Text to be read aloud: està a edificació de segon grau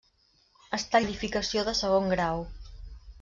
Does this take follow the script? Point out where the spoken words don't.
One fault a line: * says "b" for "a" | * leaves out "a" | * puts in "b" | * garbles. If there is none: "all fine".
all fine